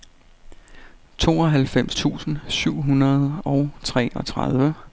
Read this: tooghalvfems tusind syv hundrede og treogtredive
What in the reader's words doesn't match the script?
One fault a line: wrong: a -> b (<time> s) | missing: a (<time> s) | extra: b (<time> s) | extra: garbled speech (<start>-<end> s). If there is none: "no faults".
no faults